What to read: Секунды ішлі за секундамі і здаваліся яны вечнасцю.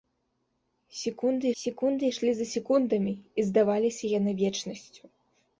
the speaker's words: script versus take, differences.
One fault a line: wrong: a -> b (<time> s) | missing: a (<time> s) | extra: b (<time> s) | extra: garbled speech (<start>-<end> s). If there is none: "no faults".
extra: секунды (1.6 s)